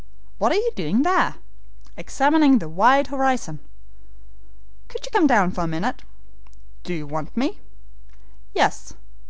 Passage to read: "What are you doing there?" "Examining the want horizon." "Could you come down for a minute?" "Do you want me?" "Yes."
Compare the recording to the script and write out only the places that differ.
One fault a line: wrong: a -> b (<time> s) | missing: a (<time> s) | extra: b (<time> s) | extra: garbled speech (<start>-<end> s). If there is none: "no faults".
wrong: want -> wide (2.7 s)